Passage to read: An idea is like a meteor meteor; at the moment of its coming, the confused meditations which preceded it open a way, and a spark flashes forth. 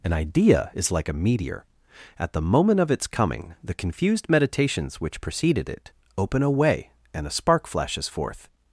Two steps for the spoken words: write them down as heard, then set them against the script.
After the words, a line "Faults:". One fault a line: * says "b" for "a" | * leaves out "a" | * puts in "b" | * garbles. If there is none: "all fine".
An idea is like a meteor; at the moment of its coming, the confused meditations which preceded it open a way, and a spark flashes forth.
Faults:
* leaves out "meteor"